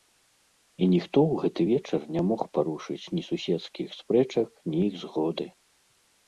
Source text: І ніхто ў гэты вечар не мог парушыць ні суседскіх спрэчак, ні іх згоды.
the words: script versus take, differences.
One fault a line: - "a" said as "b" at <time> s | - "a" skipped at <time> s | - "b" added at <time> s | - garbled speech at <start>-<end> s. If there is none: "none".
none